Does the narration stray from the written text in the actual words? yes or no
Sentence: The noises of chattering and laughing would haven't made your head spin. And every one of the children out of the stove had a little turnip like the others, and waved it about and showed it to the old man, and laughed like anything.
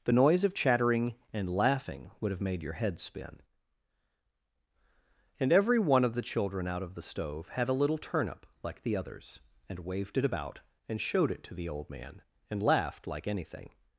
yes